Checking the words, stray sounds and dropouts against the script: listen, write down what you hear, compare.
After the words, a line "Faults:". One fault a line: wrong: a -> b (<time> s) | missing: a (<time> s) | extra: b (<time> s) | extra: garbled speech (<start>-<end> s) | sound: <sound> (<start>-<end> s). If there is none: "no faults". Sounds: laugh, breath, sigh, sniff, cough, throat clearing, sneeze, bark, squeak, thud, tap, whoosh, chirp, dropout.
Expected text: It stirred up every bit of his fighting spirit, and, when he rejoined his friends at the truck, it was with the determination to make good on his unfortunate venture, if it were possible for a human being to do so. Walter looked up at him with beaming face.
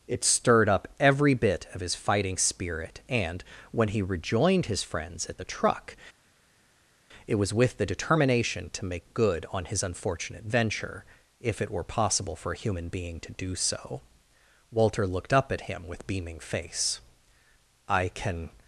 It stirred up every bit of his fighting spirit, and, when he rejoined his friends at the truck, it was with the determination to make good on his unfortunate venture, if it were possible for a human being to do so. Walter looked up at him with beaming face. "I can
Faults:
extra: I can (17.9 s)